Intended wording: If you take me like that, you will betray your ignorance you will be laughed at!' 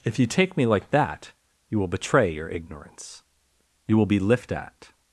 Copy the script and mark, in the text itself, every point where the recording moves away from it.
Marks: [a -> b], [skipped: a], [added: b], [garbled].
If you take me like that, you will betray your ignorance you will be [laughed -> lift] at!'